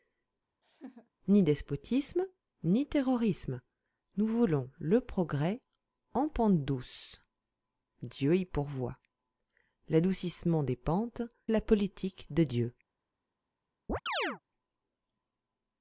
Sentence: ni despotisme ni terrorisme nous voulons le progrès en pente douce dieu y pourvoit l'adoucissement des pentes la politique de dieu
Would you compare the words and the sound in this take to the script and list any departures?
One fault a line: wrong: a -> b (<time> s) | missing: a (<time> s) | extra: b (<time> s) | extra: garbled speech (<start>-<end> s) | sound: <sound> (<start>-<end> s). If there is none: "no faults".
sound: laugh (0.6-1.1 s)
sound: chirp (13.9-14.4 s)